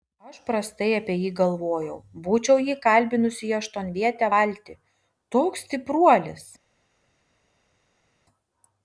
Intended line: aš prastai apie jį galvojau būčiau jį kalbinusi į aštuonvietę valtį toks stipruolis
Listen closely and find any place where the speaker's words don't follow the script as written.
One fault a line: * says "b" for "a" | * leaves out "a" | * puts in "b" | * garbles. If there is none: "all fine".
all fine